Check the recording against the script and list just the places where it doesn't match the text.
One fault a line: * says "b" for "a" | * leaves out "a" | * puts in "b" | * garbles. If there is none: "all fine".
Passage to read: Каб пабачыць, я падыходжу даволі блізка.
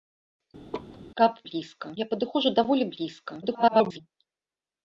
* says "блізка" for "пабачыць"
* garbles